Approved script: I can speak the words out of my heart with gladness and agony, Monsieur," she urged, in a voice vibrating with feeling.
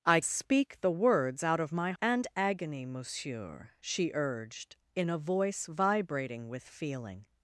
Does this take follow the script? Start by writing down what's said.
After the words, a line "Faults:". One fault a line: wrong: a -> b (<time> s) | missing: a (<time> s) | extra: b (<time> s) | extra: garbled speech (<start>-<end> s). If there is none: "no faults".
I speak the words out of my and agony, Monsieur," she urged, in a voice vibrating with feeling.
Faults:
missing: can (0.2 s)
missing: heart with gladness (1.9 s)